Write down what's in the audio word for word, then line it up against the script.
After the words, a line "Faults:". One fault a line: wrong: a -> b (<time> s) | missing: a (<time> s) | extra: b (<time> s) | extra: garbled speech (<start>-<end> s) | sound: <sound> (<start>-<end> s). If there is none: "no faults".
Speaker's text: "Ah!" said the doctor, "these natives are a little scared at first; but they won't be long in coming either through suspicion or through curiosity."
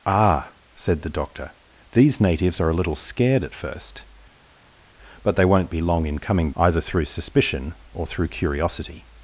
"Ah!" said the doctor, "these natives are a little scared at first; but they won't be long in coming either through suspicion or through curiosity."
Faults:
no faults